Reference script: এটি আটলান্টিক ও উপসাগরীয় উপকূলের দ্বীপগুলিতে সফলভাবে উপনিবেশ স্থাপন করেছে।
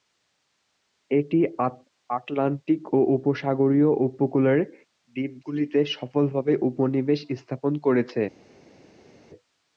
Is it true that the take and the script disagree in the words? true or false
false